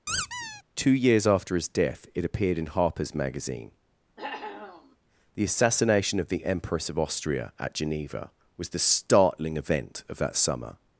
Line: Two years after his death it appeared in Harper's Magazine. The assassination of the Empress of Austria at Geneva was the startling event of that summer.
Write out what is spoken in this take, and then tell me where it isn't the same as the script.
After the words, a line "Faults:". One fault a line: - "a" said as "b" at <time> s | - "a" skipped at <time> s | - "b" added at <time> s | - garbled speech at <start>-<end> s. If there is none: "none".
Two years after his death it appeared in Harper's Magazine. The assassination of the Empress of Austria at Geneva was the startling event of that summer.
Faults:
none